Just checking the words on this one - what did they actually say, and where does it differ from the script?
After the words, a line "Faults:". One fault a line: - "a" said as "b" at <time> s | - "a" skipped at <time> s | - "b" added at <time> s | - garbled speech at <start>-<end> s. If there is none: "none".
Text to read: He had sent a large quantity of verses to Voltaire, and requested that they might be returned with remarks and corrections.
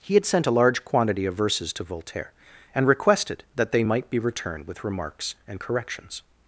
He had sent a large quantity of verses to Voltaire, and requested that they might be returned with remarks and corrections.
Faults:
none